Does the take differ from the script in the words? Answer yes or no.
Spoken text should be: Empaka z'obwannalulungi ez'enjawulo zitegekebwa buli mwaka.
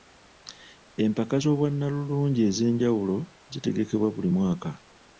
no